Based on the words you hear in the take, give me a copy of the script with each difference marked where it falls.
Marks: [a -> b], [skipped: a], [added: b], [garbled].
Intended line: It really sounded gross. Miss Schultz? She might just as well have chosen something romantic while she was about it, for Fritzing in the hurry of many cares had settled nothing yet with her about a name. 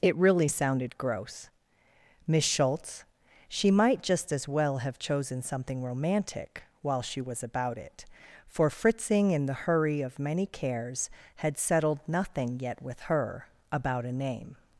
It really sounded gross. Miss Schultz? She might just as well have chosen something romantic while she was about it, for Fritzing in the hurry of many cares had settled nothing yet with her about a name.